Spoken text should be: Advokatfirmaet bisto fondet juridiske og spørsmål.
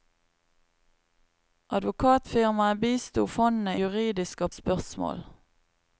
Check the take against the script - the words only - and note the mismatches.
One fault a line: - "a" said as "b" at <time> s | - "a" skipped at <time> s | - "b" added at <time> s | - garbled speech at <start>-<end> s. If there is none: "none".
none